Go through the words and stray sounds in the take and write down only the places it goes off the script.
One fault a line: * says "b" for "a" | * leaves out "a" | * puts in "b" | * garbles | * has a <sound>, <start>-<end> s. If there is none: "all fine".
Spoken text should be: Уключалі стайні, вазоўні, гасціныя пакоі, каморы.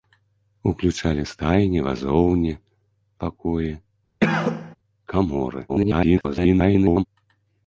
* leaves out "гасціныя"
* has a cough, 4.2-4.8 s
* garbles